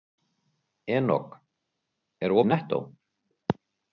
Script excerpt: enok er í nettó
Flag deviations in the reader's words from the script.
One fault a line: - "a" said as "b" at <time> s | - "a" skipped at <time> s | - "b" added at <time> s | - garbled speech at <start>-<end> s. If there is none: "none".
none